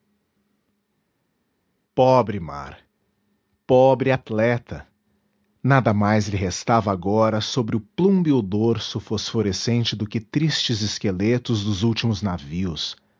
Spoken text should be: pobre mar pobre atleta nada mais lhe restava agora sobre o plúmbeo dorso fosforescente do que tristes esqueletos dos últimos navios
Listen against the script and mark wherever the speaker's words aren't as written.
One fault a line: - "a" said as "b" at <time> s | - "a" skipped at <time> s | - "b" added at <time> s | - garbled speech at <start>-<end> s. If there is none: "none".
none